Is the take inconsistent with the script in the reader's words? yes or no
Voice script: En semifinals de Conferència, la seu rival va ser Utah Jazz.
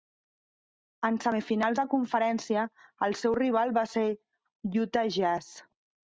yes